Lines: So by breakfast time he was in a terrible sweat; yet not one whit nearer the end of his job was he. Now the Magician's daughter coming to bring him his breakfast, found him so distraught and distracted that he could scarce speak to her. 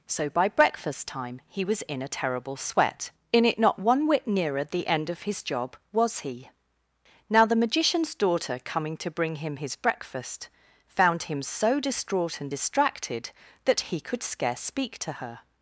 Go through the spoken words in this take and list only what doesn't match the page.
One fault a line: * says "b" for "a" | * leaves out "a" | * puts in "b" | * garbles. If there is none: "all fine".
* says "in it" for "yet"